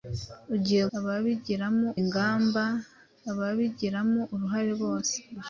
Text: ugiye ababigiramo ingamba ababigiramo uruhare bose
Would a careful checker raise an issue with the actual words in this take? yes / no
no